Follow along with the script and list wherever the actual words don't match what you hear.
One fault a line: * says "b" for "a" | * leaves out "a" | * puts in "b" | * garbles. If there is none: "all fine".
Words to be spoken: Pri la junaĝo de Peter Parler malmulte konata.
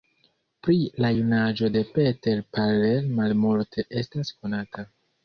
* puts in "estas"